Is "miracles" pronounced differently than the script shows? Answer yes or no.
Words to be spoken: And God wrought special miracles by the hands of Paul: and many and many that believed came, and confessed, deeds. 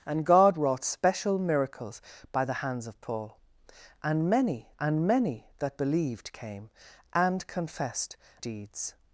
no